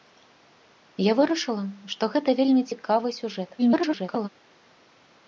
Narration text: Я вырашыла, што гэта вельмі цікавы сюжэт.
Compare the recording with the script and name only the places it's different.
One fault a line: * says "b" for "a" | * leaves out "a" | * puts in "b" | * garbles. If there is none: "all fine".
* garbles